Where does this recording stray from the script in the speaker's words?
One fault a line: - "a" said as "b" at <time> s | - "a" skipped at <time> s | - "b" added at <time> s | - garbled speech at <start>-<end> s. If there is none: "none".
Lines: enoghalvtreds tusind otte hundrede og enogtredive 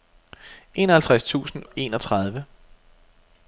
- "otte hundrede" skipped at 1.6 s